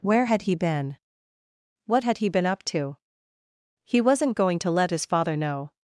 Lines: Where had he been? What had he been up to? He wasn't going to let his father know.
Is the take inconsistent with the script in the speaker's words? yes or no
no